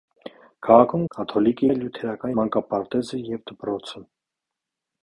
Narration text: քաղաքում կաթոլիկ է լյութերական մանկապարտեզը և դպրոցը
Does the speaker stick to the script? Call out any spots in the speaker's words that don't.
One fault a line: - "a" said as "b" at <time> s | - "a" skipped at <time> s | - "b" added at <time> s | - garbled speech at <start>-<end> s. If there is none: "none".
none